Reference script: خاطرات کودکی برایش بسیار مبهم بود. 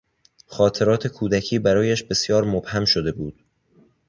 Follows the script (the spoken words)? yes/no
no